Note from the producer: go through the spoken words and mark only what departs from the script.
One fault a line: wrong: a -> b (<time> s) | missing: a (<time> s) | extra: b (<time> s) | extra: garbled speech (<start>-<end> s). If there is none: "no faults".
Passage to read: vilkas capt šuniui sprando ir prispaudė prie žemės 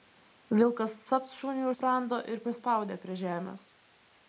no faults